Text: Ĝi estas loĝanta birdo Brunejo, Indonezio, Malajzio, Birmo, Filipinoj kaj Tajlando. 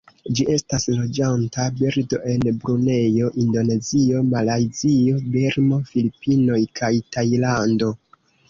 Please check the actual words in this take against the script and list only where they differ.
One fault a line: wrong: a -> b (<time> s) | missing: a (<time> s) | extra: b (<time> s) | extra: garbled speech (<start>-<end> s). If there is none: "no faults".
extra: en (2.3 s)